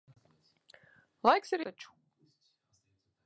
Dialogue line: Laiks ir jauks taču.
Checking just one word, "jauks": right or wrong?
wrong